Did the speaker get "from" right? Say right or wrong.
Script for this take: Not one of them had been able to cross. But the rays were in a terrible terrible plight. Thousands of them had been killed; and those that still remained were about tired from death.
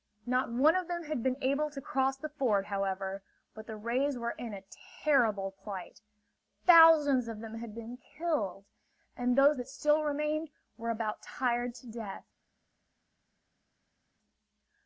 wrong